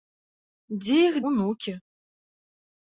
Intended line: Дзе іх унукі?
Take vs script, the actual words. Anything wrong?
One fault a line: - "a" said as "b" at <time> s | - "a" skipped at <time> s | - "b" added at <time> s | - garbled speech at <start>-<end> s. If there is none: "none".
none